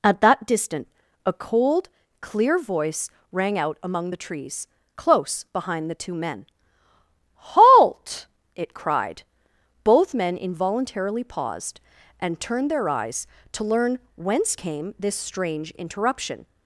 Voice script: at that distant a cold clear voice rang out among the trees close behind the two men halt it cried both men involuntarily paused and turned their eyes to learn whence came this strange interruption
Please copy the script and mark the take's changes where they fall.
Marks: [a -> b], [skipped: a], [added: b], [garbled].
at that distant a cold clear voice rang out among the trees close behind the two men halt it cried both men involuntarily paused and turned their eyes to learn whence came this strange interruption